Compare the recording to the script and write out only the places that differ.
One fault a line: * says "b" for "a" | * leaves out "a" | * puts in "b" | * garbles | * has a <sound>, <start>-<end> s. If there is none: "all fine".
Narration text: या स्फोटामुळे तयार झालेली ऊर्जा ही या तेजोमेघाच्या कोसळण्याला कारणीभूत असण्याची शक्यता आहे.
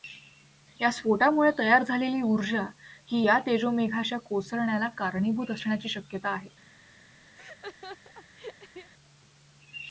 * has a laugh, 7.4-8.9 s